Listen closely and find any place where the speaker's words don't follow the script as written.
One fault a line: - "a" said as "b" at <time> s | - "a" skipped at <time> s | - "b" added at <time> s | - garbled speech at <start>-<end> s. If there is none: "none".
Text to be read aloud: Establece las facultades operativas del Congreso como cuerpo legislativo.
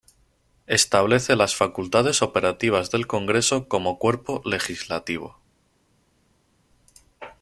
none